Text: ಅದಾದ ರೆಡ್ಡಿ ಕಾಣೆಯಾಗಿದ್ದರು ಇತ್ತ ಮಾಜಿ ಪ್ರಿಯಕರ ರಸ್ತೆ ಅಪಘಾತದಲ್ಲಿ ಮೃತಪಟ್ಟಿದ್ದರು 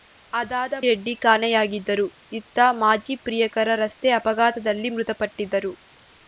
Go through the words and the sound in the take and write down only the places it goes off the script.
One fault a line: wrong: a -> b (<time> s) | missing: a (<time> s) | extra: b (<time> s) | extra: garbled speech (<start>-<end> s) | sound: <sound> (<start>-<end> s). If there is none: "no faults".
no faults